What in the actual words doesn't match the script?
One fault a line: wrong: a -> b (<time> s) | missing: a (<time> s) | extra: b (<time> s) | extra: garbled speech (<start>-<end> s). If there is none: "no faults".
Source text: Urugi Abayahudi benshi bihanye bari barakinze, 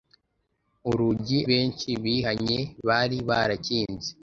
missing: Abayahudi (1.4 s)